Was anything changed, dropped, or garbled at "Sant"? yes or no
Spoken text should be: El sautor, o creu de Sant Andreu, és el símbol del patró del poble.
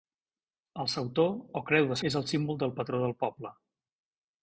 yes